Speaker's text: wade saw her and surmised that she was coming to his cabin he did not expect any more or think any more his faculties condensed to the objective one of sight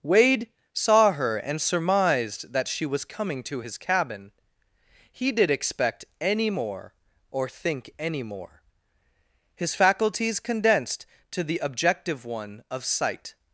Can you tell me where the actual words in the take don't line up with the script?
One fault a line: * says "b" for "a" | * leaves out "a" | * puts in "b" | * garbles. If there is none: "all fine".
* leaves out "not"